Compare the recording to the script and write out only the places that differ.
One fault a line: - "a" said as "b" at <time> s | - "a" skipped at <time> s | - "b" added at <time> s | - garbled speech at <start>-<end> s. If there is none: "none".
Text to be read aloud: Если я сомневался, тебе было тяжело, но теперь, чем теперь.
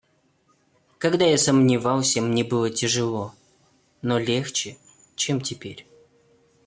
- "Если" said as "Когда" at 1.0 s
- "тебе" said as "мне" at 2.2 s
- "теперь" said as "легче" at 4.2 s